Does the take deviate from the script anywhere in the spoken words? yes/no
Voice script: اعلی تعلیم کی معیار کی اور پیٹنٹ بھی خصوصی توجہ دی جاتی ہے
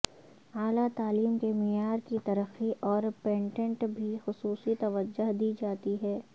yes